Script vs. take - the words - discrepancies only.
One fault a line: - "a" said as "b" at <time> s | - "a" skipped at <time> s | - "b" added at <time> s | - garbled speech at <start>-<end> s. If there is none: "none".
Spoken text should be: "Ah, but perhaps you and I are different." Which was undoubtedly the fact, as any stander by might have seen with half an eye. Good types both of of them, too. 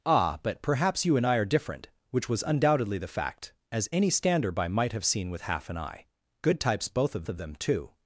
none